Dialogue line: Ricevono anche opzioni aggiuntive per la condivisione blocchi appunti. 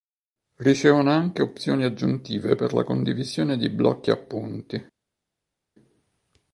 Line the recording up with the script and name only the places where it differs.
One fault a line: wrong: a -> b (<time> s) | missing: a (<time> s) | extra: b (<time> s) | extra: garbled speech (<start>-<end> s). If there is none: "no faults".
extra: di (3.5 s)